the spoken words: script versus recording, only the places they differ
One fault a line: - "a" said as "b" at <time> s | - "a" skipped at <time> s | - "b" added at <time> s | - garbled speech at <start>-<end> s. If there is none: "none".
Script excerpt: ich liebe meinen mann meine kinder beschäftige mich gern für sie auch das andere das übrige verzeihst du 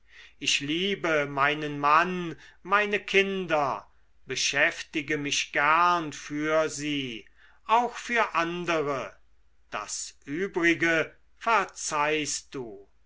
- "das" said as "für" at 8.0 s